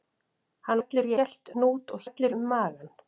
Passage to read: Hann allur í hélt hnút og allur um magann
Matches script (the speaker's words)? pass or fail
pass